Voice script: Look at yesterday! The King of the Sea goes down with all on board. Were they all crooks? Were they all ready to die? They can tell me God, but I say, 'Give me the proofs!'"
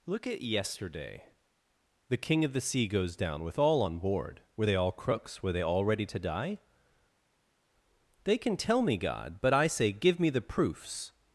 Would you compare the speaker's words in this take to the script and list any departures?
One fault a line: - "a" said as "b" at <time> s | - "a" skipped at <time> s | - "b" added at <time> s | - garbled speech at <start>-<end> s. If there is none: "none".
none